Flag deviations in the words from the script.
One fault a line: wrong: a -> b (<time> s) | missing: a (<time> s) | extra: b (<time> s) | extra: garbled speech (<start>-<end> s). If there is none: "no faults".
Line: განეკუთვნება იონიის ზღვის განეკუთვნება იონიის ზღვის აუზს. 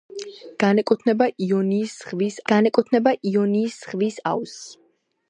no faults